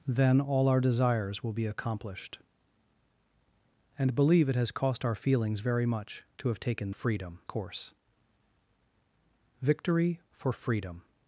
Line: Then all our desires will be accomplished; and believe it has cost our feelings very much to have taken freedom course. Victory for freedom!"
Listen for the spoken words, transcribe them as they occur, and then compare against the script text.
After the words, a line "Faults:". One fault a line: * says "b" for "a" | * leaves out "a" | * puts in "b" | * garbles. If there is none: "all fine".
Then all our desires will be accomplished; and believe it has cost our feelings very much to have taken freedom course. Victory for freedom!"
Faults:
all fine